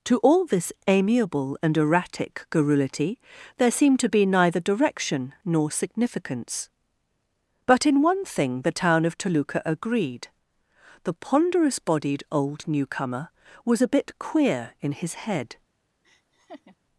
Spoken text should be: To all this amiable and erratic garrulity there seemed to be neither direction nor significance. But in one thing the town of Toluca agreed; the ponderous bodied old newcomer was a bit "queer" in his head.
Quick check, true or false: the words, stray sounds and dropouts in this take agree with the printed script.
false